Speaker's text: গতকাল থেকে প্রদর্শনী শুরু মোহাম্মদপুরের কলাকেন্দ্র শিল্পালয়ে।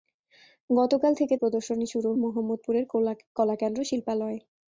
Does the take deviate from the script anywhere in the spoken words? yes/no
no